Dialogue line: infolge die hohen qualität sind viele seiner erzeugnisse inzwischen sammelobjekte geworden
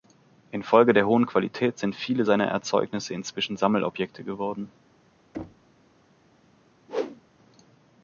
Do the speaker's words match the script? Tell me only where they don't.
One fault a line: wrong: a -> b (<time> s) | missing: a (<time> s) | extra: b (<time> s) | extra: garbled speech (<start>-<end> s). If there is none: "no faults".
wrong: die -> der (0.9 s)